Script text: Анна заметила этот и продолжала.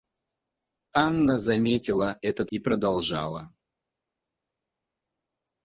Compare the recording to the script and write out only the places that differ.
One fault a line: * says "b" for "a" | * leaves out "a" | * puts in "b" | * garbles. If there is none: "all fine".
all fine